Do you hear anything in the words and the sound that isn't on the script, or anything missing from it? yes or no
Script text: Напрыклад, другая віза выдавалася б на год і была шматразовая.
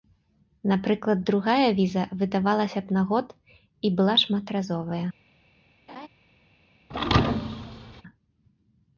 yes